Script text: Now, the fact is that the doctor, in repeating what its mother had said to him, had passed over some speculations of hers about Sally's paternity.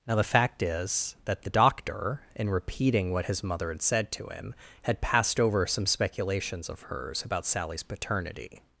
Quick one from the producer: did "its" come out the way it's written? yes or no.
no